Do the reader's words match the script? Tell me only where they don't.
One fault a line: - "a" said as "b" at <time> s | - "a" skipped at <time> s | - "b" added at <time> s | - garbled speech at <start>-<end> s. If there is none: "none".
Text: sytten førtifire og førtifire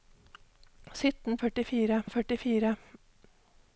none